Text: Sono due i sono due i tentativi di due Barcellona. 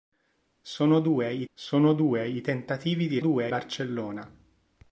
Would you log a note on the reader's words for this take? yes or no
no